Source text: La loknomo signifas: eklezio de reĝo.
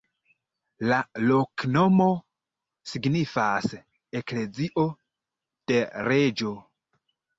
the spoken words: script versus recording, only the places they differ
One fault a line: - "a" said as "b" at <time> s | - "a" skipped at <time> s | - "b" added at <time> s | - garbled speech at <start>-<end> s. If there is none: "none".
none